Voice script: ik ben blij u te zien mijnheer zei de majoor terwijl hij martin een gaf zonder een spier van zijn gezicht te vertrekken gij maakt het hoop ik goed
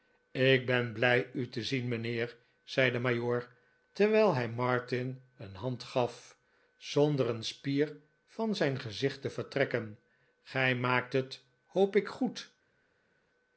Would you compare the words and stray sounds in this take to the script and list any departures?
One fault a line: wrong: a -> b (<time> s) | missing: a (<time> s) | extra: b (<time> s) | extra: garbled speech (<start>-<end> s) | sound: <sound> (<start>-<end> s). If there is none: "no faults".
extra: hand (5.5 s)